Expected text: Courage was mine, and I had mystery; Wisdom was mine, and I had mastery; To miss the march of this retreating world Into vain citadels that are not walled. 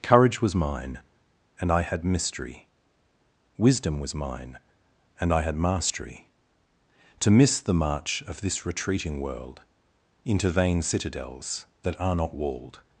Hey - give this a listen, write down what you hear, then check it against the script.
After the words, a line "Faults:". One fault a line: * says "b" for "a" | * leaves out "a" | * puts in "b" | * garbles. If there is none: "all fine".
Courage was mine, and I had mystery; Wisdom was mine, and I had mastery; To miss the march of this retreating world Into vain citadels that are not walled.
Faults:
all fine